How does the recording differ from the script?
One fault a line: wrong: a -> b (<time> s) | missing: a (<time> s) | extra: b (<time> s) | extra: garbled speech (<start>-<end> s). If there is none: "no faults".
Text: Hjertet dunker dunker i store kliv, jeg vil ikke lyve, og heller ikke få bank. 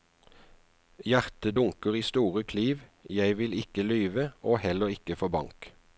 missing: dunker (1.9 s)